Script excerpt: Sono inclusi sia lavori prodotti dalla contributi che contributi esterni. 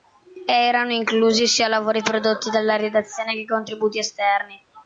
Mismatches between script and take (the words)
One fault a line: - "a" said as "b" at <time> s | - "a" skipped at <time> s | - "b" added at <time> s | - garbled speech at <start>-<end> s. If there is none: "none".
- "Sono" said as "Erano" at 0.5 s
- "contributi" said as "redazione" at 2.8 s